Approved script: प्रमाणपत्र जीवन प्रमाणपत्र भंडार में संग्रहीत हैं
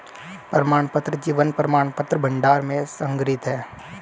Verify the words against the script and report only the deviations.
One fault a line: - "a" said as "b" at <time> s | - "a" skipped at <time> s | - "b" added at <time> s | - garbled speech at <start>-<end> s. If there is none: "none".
none